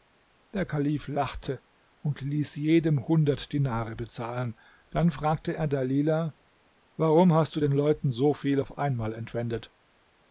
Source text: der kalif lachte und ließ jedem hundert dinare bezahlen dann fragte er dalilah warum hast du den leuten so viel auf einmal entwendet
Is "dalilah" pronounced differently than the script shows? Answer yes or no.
no